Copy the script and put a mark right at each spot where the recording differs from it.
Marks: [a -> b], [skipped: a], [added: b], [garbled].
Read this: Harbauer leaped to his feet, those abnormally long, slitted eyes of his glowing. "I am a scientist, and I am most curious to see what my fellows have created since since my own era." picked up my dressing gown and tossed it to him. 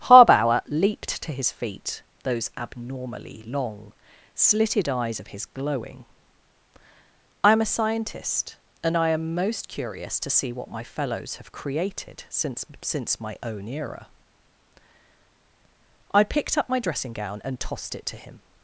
Harbauer leaped to his feet, those abnormally long, slitted eyes of his glowing. "I am a scientist, and I am most curious to see what my fellows have created since since my own era." [added: I] picked up my dressing gown and tossed it to him.